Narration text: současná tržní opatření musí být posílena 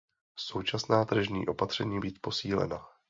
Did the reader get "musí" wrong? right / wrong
wrong